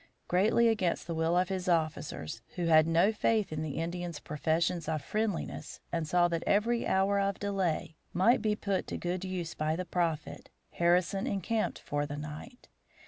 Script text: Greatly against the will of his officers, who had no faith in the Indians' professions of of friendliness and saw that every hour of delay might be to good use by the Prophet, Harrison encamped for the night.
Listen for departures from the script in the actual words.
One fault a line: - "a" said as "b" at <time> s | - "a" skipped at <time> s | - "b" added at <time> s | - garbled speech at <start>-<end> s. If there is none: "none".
- "of" skipped at 5.0 s
- "put" added at 8.5 s